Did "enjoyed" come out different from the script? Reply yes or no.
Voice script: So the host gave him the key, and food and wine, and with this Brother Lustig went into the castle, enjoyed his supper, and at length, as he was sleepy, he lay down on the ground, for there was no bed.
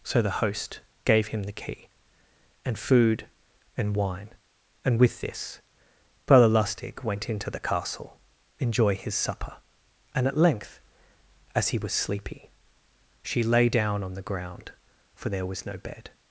yes